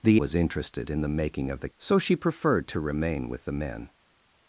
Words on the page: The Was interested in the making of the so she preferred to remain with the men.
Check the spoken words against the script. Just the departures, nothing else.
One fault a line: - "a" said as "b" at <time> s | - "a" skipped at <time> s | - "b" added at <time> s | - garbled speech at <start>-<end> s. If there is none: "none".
none